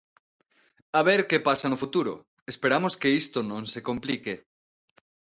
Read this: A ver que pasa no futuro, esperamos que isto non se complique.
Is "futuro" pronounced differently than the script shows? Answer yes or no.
no